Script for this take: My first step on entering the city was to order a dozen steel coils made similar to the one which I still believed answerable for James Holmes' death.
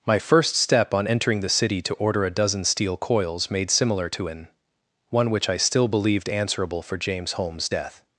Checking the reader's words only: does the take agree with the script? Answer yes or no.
no